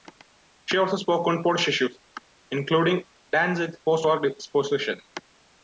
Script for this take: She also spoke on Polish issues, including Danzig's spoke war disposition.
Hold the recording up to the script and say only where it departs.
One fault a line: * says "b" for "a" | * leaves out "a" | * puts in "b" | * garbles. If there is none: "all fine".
* says "post" for "spoke"